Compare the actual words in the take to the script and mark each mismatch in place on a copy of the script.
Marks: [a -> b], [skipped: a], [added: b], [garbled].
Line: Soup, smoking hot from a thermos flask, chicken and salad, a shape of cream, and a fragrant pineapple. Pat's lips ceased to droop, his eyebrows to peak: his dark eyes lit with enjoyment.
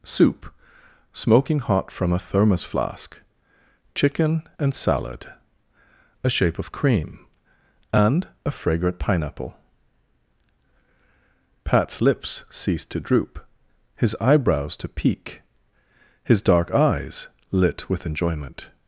Soup, smoking hot from a thermos flask, chicken and salad, a shape of cream, and a fragrant pineapple. Pat's lips ceased to droop, his eyebrows to peak: his dark eyes lit with enjoyment.